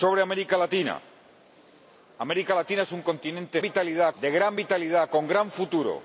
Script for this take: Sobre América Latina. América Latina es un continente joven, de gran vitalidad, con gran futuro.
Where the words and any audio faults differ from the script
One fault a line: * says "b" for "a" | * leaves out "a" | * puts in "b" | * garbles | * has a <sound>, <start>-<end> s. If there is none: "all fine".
* says "vitalidad" for "joven"